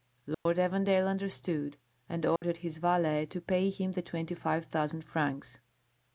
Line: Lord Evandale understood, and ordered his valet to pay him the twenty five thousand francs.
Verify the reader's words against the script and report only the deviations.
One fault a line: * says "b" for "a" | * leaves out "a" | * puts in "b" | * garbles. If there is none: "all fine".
all fine